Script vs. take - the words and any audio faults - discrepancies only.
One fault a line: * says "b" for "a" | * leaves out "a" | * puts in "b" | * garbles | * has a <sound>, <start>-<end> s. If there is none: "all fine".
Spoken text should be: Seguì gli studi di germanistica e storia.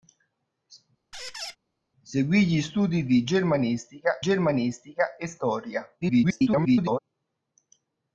* has a squeak, 1.1-1.6 s
* puts in "germanistica"
* garbles